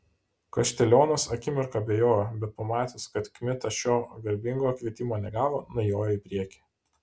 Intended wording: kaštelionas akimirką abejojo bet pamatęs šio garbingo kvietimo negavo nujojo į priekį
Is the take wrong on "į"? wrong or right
right